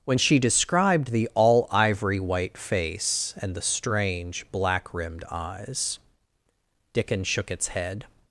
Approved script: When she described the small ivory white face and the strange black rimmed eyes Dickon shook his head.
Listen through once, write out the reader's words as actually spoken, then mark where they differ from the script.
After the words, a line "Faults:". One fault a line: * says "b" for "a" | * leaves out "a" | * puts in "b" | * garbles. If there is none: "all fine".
When she described the all ivory white face and the strange black rimmed eyes Dickon shook its head.
Faults:
* says "all" for "small"
* says "its" for "his"